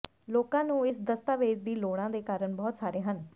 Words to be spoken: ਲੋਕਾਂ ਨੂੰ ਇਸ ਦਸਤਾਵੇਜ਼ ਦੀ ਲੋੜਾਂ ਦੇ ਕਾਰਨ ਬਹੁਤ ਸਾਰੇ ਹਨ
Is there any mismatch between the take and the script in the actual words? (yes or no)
no